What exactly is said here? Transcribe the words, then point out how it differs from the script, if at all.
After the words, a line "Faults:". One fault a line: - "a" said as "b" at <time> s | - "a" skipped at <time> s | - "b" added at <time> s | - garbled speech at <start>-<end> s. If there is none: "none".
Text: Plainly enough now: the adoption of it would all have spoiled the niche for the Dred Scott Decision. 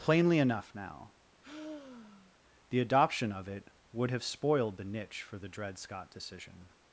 Plainly enough now: the adoption of it would have spoiled the niche for the Dred Scott Decision.
Faults:
- "all" skipped at 4.1 s